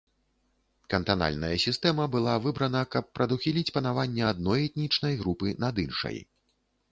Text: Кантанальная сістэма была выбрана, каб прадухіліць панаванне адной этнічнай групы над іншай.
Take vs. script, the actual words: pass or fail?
pass